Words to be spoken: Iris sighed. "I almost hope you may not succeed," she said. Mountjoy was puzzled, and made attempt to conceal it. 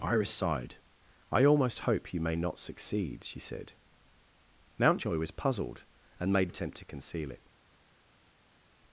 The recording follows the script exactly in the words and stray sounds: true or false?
true